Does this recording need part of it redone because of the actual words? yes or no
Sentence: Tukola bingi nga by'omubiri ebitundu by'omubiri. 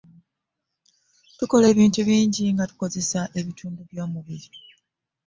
yes